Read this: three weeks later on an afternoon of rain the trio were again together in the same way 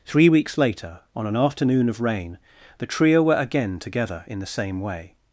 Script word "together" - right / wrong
right